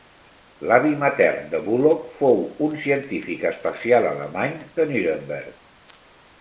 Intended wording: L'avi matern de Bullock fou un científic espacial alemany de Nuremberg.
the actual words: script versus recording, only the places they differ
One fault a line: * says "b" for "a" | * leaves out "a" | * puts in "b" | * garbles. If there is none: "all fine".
all fine